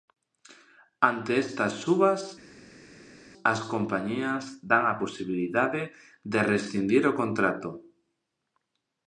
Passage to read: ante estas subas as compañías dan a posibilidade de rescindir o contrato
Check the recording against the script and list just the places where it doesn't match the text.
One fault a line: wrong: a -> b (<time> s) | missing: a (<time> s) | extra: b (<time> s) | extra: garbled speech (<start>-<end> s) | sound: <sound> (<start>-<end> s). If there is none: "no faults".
no faults